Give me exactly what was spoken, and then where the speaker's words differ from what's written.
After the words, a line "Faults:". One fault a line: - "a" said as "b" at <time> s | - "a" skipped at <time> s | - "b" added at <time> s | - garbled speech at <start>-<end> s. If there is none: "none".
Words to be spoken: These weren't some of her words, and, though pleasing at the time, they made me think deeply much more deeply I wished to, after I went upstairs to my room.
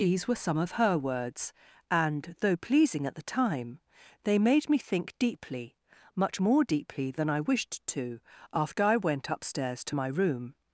These were some of her words, and, though pleasing at the time, they made me think deeply much more deeply than I wished to, after I went upstairs to my room.
Faults:
- "weren't" said as "were" at 0.3 s
- "than" added at 7.1 s